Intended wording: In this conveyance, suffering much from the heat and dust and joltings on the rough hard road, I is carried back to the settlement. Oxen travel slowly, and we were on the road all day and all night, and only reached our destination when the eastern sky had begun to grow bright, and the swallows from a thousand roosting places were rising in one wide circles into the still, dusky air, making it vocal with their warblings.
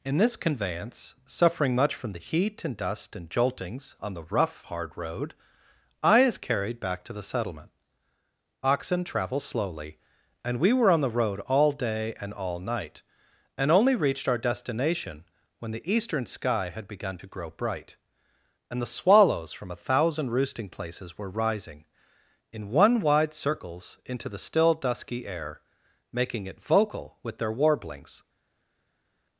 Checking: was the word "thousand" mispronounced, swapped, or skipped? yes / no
no